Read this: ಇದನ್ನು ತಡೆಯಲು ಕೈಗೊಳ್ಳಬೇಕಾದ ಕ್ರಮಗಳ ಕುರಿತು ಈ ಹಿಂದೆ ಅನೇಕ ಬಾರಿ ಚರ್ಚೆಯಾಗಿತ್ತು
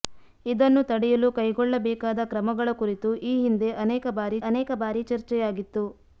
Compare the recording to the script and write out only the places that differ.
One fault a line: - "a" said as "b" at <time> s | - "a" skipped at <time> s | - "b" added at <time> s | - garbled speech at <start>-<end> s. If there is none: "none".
- "ಅನೇಕ ಬಾರಿ" added at 4.5 s